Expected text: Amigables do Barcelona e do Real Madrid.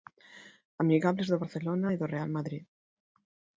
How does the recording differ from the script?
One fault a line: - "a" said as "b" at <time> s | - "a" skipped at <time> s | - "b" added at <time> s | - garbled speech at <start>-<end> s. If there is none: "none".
none